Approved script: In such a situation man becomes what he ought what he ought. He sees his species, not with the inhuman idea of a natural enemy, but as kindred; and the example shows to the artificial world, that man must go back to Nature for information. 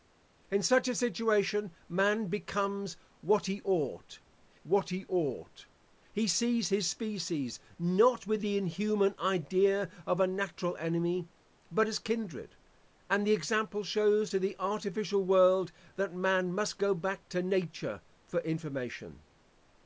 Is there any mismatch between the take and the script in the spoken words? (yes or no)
no